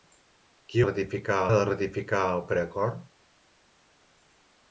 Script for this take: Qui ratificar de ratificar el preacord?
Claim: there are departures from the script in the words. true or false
false